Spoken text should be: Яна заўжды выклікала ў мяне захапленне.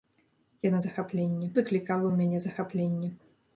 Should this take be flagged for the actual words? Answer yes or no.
yes